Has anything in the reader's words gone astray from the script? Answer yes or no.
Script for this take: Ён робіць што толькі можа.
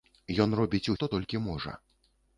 no